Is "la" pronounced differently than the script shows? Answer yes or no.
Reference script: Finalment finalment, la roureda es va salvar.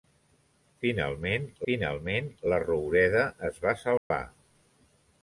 no